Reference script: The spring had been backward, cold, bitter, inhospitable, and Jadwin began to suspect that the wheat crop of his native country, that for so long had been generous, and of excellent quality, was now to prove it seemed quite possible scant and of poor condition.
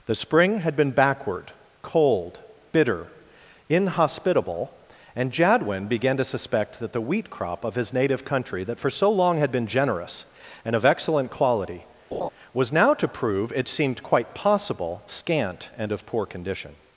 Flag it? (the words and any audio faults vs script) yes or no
yes